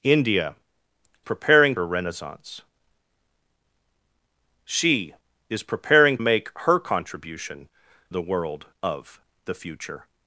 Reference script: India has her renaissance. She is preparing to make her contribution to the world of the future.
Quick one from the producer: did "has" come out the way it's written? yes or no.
no